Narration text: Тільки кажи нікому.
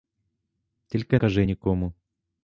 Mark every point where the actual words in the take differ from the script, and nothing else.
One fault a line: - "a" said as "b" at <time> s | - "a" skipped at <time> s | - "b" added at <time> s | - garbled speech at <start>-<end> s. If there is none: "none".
none